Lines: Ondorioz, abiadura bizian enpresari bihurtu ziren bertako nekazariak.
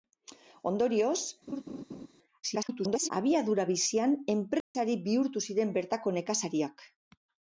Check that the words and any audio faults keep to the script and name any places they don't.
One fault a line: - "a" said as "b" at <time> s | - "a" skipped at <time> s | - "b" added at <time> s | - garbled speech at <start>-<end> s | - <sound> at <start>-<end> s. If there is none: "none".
- laugh at 1.5-2.1 s
- garbled speech at 2.4-3.1 s
- dropout at 4.6-4.7 s